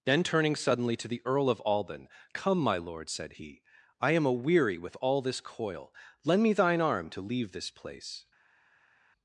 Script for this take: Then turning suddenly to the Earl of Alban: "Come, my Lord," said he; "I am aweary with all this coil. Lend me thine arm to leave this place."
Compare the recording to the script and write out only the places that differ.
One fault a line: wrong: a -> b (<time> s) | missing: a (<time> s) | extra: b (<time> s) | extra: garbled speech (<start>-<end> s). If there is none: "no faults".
no faults